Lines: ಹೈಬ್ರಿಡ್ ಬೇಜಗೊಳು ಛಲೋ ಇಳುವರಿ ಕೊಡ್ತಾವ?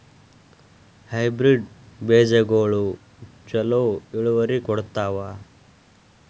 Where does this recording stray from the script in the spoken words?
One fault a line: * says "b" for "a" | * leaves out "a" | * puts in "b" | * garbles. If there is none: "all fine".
all fine